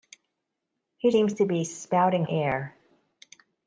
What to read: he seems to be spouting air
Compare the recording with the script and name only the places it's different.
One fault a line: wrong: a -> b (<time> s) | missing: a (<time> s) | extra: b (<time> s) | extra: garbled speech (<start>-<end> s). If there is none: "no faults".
no faults